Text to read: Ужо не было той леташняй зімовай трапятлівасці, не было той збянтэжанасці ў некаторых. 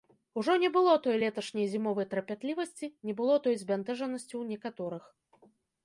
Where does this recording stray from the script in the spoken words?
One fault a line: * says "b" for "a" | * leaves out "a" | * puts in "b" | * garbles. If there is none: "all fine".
all fine